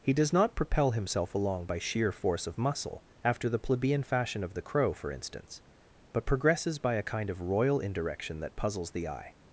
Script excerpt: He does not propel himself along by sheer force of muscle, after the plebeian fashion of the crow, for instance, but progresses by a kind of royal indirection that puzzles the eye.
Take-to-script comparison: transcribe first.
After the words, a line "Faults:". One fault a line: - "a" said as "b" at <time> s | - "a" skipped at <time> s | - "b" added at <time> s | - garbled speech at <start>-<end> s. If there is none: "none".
He does not propel himself along by sheer force of muscle, after the plebeian fashion of the crow, for instance, but progresses by a kind of royal indirection that puzzles the eye.
Faults:
none